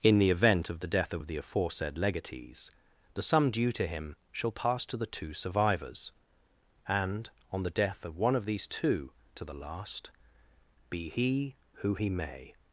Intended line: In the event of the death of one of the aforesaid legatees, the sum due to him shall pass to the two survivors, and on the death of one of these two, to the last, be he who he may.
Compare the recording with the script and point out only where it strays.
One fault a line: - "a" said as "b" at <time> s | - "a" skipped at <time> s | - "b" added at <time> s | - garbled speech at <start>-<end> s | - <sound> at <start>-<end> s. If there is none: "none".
- "one" skipped at 1.2 s